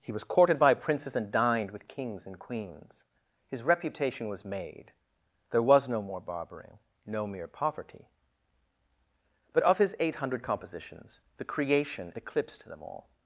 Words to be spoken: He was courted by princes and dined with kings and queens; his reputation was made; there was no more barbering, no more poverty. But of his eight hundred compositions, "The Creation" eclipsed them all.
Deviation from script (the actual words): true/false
true